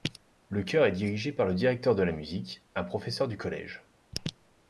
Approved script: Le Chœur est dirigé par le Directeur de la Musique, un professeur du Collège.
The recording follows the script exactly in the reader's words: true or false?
true